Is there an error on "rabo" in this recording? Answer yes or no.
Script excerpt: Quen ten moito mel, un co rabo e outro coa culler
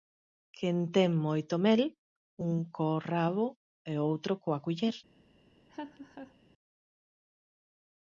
no